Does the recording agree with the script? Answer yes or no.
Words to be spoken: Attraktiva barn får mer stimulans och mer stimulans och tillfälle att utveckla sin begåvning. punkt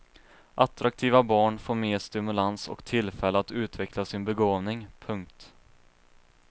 no